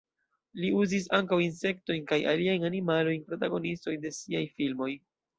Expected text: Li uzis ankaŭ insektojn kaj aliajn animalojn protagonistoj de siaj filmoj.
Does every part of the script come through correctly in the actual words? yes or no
yes